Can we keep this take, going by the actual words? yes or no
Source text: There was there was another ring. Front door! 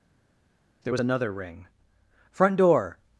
no